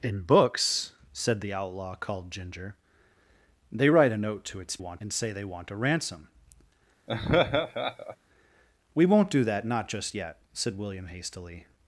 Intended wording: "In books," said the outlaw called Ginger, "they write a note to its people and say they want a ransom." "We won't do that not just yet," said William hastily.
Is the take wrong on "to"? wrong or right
right